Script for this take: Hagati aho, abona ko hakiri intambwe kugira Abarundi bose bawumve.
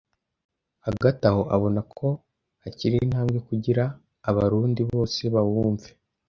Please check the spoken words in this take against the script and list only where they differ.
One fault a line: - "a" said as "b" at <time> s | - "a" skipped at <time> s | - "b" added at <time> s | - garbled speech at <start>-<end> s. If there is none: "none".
none